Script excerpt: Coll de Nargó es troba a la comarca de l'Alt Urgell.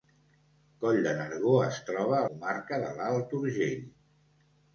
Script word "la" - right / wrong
wrong